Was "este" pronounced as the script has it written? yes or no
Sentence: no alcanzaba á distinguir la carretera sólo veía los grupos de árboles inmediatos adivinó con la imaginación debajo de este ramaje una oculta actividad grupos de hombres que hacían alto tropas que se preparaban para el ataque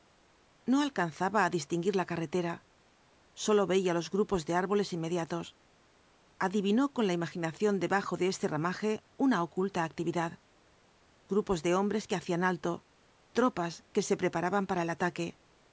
yes